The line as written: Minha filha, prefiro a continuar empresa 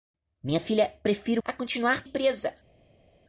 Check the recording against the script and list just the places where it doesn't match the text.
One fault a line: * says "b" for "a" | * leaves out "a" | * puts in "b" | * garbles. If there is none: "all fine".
all fine